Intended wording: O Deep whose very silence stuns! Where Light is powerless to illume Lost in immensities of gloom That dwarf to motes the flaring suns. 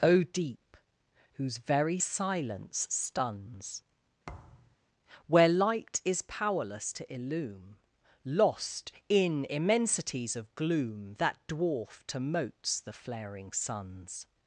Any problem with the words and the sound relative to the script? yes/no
yes